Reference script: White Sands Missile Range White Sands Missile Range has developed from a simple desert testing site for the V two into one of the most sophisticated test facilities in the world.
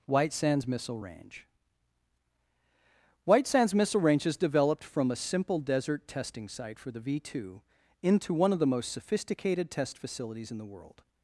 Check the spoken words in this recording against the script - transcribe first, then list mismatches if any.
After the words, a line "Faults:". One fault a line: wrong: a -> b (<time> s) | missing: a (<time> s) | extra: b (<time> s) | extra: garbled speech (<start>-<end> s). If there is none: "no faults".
White Sands Missile Range White Sands Missile Range has developed from a simple desert testing site for the V two into one of the most sophisticated test facilities in the world.
Faults:
no faults